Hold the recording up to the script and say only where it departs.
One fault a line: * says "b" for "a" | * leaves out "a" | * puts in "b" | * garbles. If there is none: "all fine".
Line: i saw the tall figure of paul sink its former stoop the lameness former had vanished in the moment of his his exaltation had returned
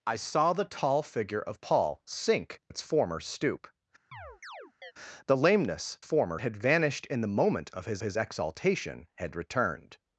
all fine